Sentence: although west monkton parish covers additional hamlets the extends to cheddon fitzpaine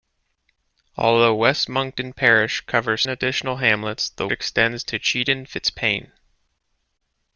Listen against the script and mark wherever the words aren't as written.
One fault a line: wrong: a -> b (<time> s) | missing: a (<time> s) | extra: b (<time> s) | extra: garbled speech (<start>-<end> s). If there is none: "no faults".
no faults